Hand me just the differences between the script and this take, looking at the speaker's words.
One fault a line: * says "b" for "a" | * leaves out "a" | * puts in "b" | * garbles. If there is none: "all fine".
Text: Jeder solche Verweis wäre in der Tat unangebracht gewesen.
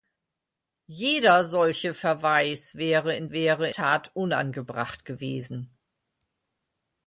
* says "wäre" for "der"